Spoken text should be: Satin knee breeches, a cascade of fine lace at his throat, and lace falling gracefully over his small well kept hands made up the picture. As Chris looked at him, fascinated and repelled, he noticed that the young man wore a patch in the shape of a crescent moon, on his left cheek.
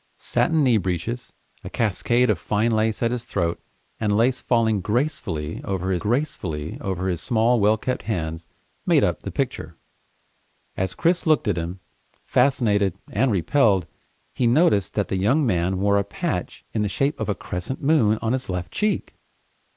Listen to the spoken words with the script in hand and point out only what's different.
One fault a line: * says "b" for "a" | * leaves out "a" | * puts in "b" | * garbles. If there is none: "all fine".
* puts in "gracefully over his"